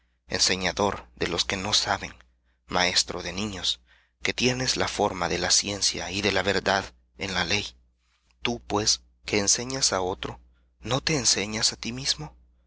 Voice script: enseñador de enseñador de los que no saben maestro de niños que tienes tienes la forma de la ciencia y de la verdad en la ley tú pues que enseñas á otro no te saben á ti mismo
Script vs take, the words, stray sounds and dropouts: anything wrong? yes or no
yes